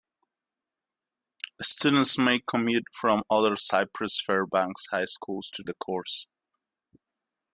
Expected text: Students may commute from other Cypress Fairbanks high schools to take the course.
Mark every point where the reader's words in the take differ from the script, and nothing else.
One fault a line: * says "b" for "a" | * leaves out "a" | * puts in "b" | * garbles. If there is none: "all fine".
* leaves out "take"